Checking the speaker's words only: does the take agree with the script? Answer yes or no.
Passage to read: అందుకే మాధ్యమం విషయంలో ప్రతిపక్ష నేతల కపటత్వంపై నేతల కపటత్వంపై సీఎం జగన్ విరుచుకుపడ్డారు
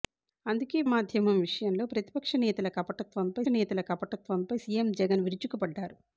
yes